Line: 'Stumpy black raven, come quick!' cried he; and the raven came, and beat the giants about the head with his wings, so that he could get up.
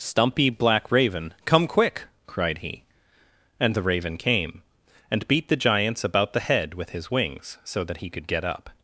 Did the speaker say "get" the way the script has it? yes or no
yes